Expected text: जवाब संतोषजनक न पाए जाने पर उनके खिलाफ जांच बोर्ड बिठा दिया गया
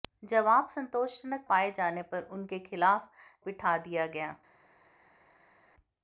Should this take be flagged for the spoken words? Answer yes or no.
yes